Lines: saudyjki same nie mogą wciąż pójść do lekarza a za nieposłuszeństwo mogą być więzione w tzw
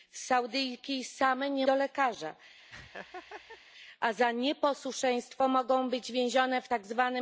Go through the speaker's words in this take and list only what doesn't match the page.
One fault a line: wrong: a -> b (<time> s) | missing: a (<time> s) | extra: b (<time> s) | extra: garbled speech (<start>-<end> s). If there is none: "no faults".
missing: mogą wciąż pójść (1.7 s)